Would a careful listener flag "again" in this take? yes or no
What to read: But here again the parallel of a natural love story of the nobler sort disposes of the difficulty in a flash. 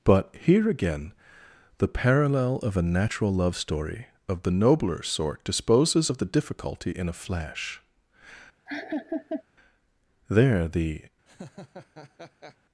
no